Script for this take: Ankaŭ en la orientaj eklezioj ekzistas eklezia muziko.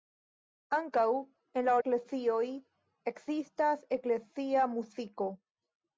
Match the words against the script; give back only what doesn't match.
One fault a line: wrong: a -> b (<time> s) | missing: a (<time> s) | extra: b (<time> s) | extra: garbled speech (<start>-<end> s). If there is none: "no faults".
missing: orientaj (1.8 s)